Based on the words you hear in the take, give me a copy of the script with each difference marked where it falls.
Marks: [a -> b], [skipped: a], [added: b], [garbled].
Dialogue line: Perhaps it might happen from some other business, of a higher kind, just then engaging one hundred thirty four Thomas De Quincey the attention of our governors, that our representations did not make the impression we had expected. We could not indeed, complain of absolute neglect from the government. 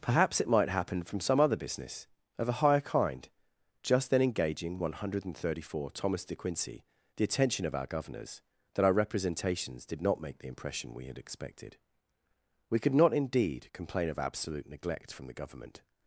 Perhaps it might happen from some other business, of a higher kind, just then engaging one hundred thirty four Thomas De Quincey the attention of our governors, that our representations did not make the impression we had expected. We could not indeed, complain of absolute neglect from the government.